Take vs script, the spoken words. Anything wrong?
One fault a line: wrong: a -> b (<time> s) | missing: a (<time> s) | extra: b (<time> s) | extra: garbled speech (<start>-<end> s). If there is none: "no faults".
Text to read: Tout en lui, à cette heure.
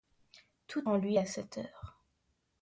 no faults